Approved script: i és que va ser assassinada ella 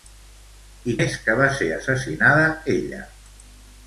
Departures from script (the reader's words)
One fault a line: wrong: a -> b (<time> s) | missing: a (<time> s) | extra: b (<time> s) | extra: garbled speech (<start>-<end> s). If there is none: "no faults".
no faults